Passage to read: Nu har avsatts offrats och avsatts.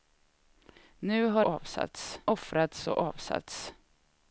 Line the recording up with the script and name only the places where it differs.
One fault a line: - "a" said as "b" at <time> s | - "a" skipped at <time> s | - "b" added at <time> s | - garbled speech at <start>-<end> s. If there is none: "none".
none